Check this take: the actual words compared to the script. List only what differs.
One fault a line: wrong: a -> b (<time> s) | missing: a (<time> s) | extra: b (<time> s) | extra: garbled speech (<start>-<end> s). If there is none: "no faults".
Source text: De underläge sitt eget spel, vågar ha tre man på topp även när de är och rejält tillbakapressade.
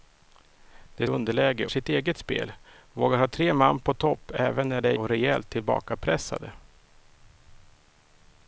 no faults